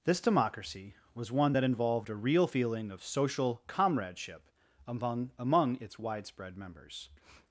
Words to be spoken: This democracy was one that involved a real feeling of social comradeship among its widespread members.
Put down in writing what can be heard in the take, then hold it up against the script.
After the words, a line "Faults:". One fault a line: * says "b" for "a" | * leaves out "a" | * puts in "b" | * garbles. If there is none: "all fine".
This democracy was one that involved a real feeling of social comradeship among among its widespread members.
Faults:
* puts in "among"